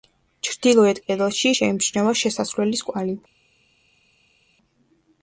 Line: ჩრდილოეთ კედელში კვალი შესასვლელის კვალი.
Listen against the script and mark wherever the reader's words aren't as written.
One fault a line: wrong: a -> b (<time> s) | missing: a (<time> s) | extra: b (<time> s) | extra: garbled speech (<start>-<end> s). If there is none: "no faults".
wrong: კვალი -> შეიმჩნევა (1.5 s)